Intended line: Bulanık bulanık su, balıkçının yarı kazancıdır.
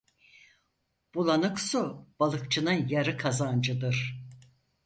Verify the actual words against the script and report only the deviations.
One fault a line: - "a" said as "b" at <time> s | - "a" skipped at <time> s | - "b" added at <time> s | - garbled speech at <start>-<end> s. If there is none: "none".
- "bulanık" skipped at 1.6 s